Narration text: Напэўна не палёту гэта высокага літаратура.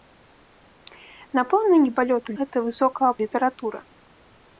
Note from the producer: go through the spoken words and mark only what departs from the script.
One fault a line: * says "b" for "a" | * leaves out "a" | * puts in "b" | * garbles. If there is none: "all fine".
all fine